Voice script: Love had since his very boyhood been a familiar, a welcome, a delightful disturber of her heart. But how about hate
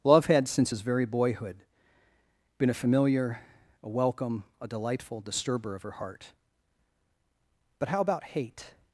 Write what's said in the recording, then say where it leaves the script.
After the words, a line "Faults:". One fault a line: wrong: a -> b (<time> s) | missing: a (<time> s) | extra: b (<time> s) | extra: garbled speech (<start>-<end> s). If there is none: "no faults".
Love had since his very boyhood been a familiar, a welcome, a delightful disturber of her heart. But how about hate
Faults:
no faults